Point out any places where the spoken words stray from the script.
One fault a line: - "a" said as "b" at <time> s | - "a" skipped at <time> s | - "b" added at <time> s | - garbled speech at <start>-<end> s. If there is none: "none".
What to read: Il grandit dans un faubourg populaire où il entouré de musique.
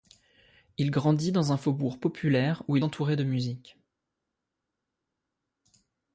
none